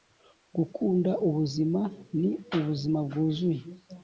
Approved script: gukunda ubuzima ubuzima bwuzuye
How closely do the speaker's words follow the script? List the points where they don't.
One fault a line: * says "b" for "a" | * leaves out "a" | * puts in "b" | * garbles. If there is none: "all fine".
* puts in "ni"